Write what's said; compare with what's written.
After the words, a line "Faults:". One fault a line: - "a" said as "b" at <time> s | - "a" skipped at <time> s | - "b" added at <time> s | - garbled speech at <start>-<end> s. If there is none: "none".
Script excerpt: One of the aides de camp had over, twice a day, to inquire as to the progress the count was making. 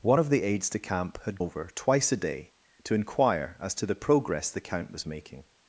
One of the aides de camp had over, twice a day, to inquire as to the progress the count was making.
Faults:
none